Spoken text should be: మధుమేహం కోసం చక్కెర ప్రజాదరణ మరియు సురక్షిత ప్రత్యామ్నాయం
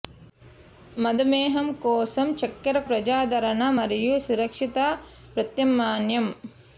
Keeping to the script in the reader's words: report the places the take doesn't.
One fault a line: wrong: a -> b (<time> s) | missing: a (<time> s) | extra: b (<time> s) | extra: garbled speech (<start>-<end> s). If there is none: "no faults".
no faults